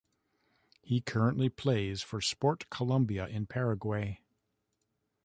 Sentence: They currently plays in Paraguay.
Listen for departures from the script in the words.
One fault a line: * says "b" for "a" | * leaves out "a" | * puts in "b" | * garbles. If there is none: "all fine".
* says "He" for "They"
* puts in "for Sport Colombia"